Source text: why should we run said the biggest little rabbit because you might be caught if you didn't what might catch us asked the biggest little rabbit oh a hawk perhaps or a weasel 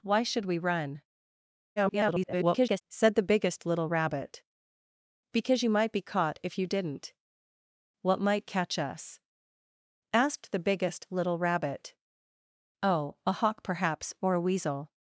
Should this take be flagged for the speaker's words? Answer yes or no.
yes